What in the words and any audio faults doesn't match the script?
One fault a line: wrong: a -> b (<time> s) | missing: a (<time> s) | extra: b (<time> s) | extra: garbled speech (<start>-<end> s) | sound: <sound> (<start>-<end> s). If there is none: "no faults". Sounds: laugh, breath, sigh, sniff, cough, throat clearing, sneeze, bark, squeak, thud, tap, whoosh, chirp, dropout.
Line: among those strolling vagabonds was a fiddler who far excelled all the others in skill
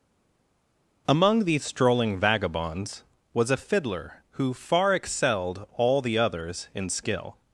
wrong: those -> these (1.4 s)